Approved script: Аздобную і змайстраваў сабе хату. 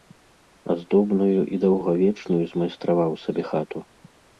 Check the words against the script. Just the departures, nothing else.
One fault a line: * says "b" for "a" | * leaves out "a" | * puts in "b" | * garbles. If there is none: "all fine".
* puts in "даўгавечную"